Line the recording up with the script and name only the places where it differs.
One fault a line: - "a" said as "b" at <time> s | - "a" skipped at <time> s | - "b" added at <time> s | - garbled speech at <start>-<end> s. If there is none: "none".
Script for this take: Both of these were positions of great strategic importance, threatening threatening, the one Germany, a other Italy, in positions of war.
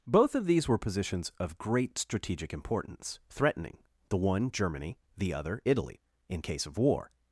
- "threatening" skipped at 3.8 s
- "a" said as "the" at 5.2 s
- "positions" said as "case" at 6.4 s